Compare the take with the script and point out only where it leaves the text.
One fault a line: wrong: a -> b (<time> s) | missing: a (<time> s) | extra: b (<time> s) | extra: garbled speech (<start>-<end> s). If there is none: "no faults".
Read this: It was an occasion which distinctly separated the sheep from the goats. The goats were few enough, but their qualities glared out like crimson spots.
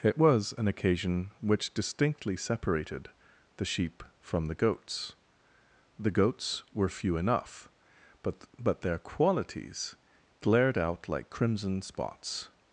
extra: but (8.6 s)